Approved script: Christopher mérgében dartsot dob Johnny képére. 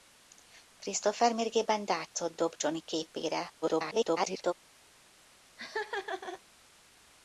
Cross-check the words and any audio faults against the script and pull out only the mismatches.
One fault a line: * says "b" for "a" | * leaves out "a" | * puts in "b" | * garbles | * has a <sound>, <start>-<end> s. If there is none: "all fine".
* garbles
* has a laugh, 5.6-6.4 s